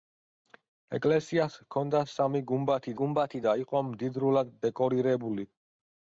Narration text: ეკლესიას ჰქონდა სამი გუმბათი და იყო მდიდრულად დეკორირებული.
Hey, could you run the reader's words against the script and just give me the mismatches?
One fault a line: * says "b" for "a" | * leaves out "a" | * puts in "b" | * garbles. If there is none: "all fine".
* puts in "გუმბათი"